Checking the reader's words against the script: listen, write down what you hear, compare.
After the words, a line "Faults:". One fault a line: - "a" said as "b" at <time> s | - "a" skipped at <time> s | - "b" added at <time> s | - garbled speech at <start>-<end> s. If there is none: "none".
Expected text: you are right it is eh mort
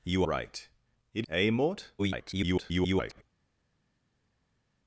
you right it eh mort [garbled]
Faults:
- "are" skipped at 0.2 s
- "is" skipped at 1.3 s
- garbled speech at 2.0-3.2 s